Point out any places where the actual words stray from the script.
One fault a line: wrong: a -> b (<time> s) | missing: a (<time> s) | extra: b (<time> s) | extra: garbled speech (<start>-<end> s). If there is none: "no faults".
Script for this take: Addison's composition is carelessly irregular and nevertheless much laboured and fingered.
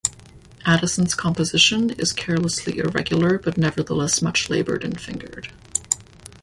wrong: and -> but (3.4 s)